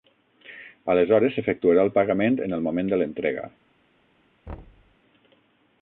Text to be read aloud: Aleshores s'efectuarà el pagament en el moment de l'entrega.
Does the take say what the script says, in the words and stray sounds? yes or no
no